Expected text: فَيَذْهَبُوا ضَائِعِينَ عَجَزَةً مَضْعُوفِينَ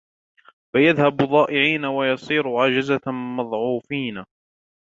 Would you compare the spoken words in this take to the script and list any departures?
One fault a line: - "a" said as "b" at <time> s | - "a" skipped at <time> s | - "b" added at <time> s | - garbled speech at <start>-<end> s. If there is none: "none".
- "وَيَصِيرُوا" added at 1.9 s